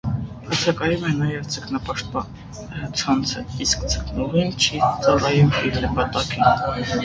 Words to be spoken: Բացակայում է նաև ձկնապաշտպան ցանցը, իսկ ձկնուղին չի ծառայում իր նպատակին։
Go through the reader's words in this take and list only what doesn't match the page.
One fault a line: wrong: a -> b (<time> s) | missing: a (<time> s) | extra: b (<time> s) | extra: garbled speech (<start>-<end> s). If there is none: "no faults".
no faults